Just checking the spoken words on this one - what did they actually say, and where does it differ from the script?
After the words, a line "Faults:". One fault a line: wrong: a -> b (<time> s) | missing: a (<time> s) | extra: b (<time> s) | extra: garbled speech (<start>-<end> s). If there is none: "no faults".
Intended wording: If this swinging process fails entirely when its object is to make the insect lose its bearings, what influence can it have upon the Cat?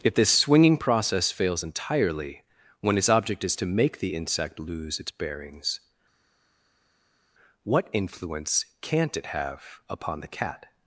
If this swinging process fails entirely when its object is to make the insect lose its bearings, what influence can't it have upon the Cat?
Faults:
wrong: can -> can't (8.8 s)